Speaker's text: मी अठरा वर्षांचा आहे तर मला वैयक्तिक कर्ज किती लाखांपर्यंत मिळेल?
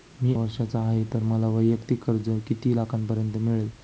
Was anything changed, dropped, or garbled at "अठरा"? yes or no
yes